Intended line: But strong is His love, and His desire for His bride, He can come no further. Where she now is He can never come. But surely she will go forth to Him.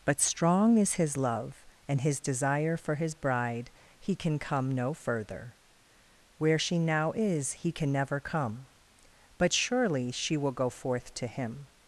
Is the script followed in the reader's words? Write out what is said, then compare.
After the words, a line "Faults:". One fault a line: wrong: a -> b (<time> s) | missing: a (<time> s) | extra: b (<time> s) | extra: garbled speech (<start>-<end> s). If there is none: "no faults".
But strong is His love, and His desire for His bride, He can come no further. Where she now is He can never come. But surely she will go forth to Him.
Faults:
no faults